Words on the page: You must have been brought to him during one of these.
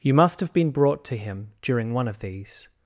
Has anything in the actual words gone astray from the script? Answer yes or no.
no